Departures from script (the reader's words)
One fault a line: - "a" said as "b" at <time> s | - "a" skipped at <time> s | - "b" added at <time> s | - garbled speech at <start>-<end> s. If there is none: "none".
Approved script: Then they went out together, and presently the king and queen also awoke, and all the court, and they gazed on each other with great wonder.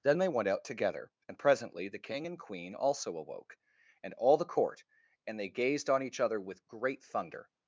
- "wonder" said as "thunder" at 7.0 s